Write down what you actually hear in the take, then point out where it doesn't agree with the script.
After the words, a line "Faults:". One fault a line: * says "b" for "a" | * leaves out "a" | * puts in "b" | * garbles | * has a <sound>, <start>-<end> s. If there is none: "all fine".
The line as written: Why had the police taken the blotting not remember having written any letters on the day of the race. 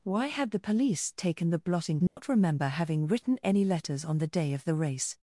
Why had the police taken the blotting not remember having written any letters on the day of the race.
Faults:
* has a dropout, 2.1-2.2 s